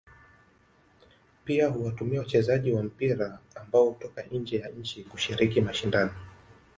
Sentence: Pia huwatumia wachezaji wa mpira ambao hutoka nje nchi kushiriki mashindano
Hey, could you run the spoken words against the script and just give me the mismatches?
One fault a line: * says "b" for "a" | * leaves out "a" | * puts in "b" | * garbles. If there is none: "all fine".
* puts in "ya"